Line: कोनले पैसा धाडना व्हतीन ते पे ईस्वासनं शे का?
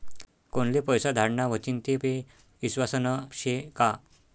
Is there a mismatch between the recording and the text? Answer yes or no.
no